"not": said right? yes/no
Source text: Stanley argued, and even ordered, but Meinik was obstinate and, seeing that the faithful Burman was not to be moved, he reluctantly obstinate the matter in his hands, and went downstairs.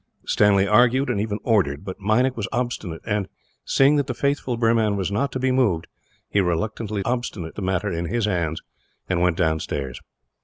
yes